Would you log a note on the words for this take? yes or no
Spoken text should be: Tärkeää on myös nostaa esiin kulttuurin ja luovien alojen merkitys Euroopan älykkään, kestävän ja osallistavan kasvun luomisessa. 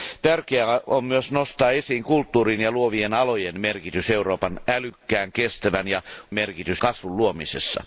yes